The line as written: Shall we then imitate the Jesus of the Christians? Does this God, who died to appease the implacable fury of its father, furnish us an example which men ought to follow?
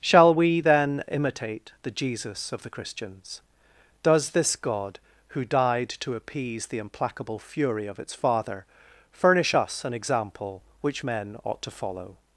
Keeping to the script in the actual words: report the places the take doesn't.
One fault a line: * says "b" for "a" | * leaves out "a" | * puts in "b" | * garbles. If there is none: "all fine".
all fine